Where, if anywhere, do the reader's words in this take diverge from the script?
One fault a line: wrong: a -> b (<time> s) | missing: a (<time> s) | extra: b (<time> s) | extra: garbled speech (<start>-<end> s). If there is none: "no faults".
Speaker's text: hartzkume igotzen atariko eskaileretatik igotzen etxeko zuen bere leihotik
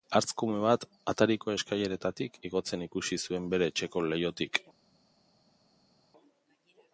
wrong: igotzen -> bat (0.6 s)
wrong: etxeko -> ikusi (2.9 s)
extra: etxeko (3.7 s)